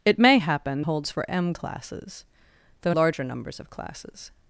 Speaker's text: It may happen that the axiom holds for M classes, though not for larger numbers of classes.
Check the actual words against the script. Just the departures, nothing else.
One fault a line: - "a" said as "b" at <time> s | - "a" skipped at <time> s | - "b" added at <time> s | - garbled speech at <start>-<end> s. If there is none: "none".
- "that the axiom" skipped at 0.8 s
- "not for" skipped at 2.9 s